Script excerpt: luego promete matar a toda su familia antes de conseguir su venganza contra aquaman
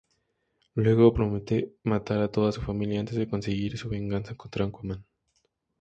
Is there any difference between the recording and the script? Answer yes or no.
no